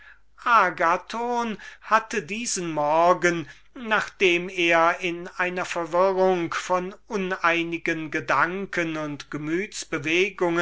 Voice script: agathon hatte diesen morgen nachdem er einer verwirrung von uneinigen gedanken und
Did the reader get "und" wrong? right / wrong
right